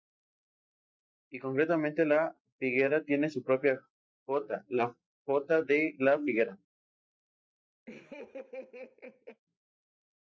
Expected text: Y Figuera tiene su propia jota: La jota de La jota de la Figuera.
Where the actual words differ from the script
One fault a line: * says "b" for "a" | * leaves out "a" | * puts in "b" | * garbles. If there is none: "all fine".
* puts in "concretamente La"
* leaves out "jota de la"